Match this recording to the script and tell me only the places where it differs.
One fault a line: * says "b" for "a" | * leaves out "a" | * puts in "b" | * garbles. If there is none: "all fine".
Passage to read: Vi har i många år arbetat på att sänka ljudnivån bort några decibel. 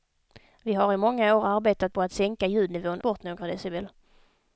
all fine